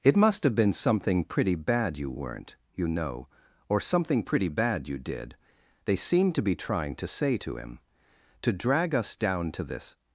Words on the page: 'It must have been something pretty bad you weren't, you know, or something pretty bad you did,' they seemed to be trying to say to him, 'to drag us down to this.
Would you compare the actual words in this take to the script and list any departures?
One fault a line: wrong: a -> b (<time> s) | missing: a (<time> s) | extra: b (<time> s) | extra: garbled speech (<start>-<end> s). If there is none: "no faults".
no faults